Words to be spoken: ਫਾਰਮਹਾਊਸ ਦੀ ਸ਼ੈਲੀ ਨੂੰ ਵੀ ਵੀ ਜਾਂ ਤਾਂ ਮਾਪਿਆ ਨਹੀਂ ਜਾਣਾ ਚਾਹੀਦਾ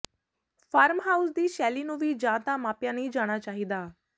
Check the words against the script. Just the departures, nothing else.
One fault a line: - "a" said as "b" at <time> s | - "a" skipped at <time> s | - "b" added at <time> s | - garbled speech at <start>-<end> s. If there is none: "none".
- "ਵੀ" skipped at 2.1 s